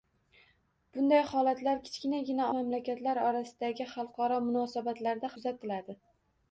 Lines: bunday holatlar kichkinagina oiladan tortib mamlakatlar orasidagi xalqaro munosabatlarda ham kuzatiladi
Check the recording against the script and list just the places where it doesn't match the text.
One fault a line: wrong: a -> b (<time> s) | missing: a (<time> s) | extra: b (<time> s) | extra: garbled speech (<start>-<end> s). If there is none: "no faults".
missing: oiladan tortib (2.5 s)
missing: ham (5.3 s)